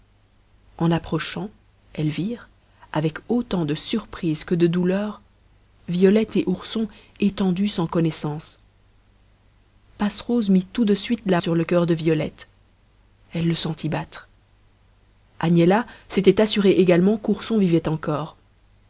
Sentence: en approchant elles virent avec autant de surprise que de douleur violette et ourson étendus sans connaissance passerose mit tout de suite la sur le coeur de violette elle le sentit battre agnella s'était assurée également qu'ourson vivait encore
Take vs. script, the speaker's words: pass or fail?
pass